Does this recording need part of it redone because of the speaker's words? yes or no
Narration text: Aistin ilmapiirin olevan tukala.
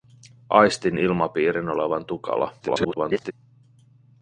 yes